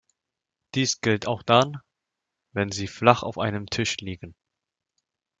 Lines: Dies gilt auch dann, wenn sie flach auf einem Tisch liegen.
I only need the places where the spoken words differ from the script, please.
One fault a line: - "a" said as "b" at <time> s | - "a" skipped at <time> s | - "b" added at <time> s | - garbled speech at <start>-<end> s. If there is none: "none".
none